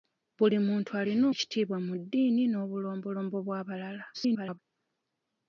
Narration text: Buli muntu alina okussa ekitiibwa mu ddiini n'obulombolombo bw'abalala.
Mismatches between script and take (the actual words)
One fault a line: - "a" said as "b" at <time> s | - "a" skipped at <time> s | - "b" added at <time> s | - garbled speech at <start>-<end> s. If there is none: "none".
- "okussa" skipped at 1.2 s
- garbled speech at 4.1-4.6 s